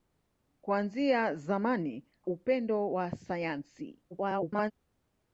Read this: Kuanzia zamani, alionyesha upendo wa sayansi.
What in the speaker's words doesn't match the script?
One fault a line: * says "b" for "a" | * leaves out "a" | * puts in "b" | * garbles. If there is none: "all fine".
* leaves out "alionyesha"
* garbles